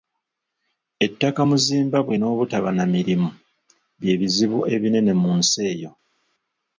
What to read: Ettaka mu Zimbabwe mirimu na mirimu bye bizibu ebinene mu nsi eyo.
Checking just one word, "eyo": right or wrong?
right